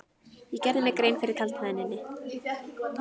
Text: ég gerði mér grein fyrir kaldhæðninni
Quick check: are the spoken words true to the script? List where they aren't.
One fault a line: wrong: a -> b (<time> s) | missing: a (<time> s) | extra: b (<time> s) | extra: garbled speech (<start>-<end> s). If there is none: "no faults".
no faults